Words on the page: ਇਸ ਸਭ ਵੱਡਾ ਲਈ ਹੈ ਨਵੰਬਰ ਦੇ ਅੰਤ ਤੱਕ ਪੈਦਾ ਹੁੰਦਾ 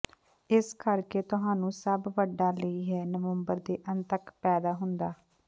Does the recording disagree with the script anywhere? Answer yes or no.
yes